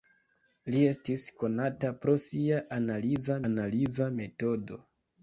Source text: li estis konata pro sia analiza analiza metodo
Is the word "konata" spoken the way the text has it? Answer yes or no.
yes